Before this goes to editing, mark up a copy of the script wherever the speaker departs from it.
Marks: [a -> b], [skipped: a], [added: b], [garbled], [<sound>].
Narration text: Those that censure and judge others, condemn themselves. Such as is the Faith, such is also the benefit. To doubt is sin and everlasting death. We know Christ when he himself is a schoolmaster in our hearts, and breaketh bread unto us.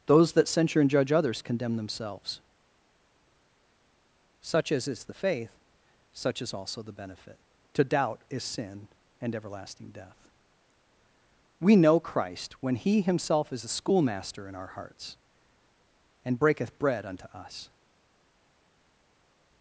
Those that censure and judge others, condemn themselves. Such as is the Faith, such is also the benefit. To doubt is sin and everlasting death. We know Christ when he himself is a schoolmaster in our hearts, and breaketh bread unto us.